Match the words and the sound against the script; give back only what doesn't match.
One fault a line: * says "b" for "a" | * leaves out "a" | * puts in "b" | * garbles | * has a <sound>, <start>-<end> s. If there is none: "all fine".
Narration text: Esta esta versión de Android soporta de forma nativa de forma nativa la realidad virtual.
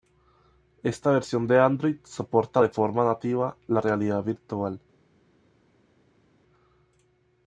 * leaves out "esta"
* leaves out "de forma nativa"